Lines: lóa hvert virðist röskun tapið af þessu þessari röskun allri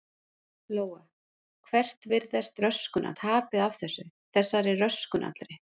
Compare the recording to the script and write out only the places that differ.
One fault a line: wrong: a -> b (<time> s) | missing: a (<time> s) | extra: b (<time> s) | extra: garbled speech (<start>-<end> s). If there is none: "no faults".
no faults